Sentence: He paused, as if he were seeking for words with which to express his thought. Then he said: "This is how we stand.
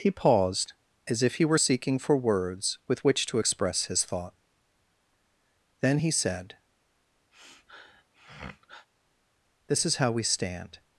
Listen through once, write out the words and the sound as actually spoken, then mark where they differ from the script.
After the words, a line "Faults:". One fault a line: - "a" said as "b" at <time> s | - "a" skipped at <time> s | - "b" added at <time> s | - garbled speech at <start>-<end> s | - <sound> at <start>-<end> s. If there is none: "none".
He paused, as if he were seeking for words with which to express his thought. Then he said: "This is how we stand.
Faults:
- sniff at 7.3-8.9 s